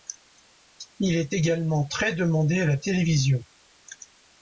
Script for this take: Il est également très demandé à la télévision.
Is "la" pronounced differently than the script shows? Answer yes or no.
no